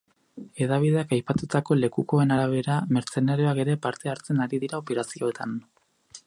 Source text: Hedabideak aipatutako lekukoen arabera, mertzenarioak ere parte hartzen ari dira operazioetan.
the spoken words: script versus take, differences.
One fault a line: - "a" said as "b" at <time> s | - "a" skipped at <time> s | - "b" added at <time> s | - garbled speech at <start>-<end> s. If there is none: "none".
none